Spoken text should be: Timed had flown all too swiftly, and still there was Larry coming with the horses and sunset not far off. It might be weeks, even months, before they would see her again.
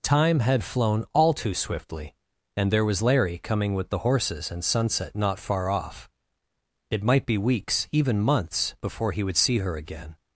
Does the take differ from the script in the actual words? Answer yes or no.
yes